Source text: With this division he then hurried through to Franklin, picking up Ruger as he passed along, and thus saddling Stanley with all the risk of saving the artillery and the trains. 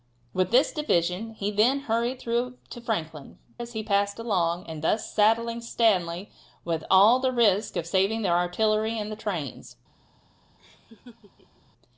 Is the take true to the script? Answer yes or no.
no